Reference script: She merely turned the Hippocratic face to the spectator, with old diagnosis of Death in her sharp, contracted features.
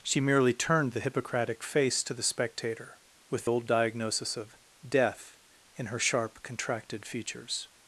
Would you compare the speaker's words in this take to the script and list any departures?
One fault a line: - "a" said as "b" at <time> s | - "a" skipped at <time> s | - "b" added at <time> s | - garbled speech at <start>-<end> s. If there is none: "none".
none